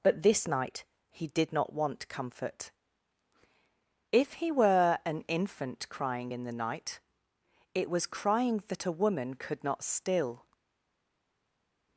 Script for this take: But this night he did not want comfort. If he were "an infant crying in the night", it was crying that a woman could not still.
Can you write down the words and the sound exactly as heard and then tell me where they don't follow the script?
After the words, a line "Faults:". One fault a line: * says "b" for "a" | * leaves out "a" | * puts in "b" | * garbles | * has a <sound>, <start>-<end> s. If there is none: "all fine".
But this night he did not want comfort. If he were "an infant crying in the night", it was crying that a woman could not still.
Faults:
all fine